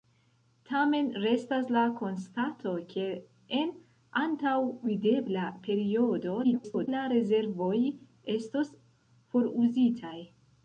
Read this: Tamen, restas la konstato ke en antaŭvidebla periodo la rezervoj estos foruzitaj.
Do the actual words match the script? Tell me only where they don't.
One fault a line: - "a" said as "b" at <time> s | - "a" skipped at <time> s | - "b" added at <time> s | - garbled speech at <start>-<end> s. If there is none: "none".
- garbled speech at 6.4-6.9 s